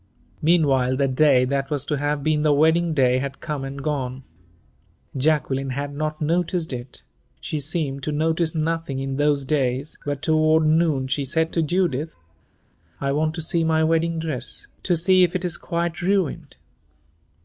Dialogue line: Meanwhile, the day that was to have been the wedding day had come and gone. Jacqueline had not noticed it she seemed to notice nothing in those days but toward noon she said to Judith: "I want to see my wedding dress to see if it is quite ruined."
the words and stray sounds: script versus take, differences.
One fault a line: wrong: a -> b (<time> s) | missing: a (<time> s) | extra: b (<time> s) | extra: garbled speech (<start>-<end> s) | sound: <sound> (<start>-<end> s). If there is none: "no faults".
no faults